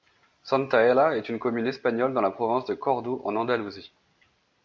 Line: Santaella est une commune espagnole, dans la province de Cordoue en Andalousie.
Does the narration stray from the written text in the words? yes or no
no